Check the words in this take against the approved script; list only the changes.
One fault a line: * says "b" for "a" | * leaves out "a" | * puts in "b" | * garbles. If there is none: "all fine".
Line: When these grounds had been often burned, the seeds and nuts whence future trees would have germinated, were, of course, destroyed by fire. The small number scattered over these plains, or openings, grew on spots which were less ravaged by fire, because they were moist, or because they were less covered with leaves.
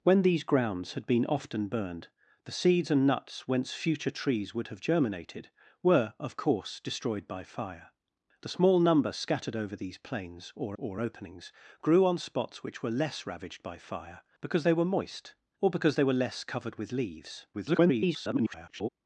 * puts in "or"
* garbles